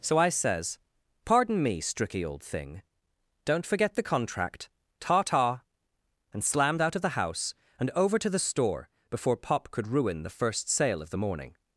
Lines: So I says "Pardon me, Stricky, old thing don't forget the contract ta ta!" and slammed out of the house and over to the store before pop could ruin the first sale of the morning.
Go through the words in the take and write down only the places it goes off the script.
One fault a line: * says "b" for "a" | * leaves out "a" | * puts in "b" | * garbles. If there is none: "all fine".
all fine